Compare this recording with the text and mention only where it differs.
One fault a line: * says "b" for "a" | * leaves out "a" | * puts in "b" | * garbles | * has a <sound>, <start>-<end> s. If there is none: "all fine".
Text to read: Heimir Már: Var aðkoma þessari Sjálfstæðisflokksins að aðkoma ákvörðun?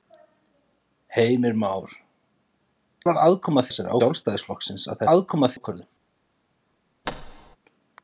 * has a thud, 7.0-7.6 s